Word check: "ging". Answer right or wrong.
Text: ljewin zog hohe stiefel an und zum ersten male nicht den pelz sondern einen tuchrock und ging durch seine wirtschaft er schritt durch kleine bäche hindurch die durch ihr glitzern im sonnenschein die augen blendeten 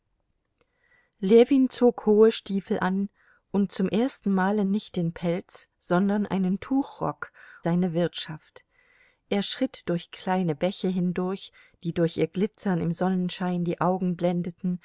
wrong